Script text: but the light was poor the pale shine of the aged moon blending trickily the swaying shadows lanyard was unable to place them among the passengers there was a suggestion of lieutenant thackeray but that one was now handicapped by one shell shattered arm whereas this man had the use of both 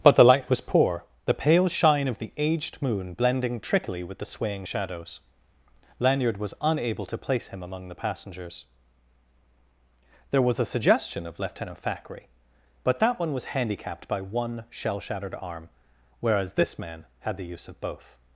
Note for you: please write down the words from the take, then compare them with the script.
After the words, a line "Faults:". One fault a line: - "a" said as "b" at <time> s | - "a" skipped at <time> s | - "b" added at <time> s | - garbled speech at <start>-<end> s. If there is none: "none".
but the light was poor the pale shine of the aged moon blending trickily with the swaying shadows lanyard was unable to place him among the passengers there was a suggestion of lieutenant thackeray but that one was handicapped by one shell shattered arm whereas this man had the use of both
Faults:
- "with" added at 4.1 s
- "them" said as "him" at 7.5 s
- "now" skipped at 13.4 s